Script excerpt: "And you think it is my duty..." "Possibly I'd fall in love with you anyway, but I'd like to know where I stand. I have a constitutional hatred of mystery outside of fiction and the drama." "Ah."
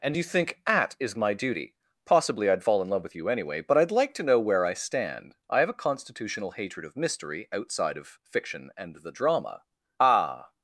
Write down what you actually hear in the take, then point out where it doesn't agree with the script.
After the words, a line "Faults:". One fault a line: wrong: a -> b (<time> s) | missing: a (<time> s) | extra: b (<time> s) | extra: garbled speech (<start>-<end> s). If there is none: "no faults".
"And you think at is my duty..." "Possibly I'd fall in love with you anyway, but I'd like to know where I stand. I have a constitutional hatred of mystery outside of fiction and the drama." "Ah."
Faults:
wrong: it -> at (0.7 s)